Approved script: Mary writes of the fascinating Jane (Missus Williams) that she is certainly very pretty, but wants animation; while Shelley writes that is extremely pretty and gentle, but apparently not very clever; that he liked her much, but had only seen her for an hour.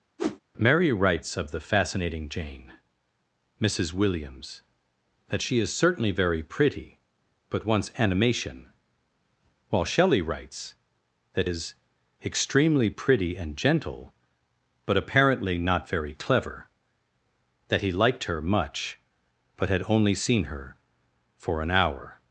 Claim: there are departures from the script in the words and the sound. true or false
true